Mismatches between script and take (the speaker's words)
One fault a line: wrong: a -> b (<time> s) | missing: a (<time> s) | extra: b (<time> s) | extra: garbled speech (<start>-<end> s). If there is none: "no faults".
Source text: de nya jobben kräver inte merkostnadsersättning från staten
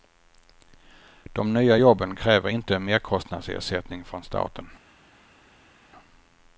no faults